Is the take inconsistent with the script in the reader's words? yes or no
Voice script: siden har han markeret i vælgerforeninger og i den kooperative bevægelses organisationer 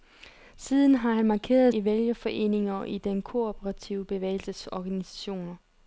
no